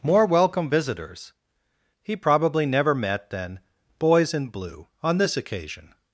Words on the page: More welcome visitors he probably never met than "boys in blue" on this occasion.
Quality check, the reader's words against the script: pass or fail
pass